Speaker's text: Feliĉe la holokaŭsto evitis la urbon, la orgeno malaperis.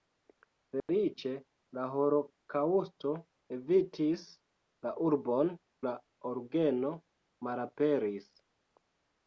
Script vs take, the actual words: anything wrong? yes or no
no